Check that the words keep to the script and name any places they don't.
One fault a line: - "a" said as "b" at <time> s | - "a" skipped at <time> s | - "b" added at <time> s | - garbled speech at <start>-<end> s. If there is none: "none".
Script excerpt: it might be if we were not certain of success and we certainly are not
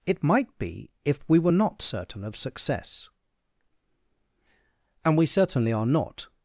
none